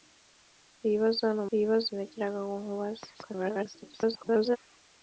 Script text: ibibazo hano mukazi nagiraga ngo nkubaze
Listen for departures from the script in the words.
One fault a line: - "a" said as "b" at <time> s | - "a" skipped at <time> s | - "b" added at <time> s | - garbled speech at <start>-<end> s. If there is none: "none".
- "mukazi" said as "ibibazo" at 1.5 s
- garbled speech at 3.1-4.6 s